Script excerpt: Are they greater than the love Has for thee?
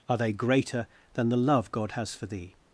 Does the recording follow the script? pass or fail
fail